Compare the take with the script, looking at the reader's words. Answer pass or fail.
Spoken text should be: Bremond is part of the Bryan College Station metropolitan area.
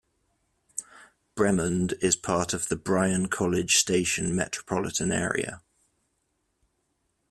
pass